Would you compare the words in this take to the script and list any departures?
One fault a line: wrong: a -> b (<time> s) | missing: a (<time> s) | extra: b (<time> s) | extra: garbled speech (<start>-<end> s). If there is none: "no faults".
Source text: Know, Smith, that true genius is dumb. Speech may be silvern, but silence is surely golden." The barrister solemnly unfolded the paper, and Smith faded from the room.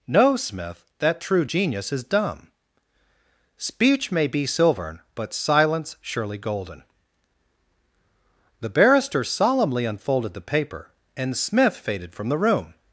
missing: is (6.0 s)